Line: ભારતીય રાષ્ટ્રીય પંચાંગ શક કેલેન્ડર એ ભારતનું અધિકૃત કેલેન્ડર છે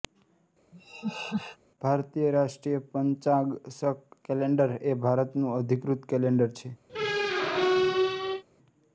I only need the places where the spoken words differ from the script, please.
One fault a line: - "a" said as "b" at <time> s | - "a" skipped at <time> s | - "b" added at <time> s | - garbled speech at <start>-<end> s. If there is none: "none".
none